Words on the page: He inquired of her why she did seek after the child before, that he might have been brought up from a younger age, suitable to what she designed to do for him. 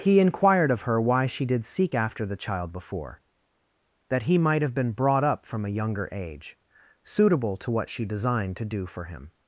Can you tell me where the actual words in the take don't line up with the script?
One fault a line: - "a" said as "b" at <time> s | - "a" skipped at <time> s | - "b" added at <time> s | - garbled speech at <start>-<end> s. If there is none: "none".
none